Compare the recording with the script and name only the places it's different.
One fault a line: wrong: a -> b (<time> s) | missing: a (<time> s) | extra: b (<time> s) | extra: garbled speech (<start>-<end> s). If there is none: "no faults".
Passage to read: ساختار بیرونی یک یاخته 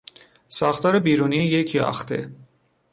no faults